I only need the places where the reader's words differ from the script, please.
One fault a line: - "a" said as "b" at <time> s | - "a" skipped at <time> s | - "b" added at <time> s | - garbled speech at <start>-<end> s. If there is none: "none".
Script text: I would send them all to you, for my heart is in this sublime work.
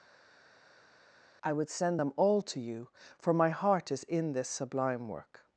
none